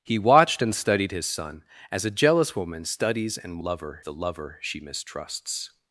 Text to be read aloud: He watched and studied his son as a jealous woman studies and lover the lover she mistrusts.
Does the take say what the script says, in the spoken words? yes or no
yes